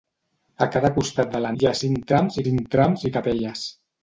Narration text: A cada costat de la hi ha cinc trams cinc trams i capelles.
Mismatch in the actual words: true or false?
false